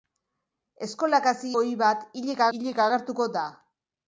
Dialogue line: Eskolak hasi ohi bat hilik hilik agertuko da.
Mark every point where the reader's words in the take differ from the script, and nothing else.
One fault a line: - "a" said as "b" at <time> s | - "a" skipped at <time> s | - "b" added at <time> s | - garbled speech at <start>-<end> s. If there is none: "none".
none